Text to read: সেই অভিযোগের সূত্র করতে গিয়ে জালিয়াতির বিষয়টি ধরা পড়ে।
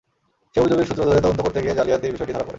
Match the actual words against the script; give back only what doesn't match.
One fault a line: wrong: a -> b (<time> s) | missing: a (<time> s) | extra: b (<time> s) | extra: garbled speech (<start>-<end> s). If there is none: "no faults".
extra: ধরে তদন্ত (1.1 s)